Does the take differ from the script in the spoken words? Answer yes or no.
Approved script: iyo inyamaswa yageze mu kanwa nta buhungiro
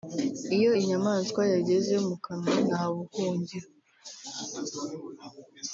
no